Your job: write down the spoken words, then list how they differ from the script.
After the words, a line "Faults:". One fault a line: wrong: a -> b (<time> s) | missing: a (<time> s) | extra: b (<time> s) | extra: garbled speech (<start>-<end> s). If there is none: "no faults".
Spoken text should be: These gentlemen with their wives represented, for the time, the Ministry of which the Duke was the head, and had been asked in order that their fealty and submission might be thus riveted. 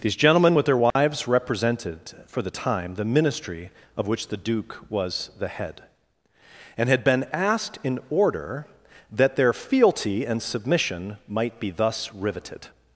These gentlemen with their wives represented, for the time, the Ministry of which the Duke was the head, and had been asked in order that their fealty and submission might be thus riveted.
Faults:
no faults